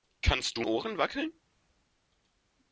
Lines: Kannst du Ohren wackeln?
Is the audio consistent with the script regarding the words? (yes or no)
yes